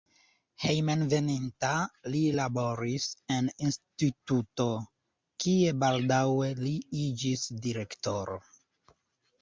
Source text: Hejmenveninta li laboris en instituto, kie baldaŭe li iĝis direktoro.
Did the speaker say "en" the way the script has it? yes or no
yes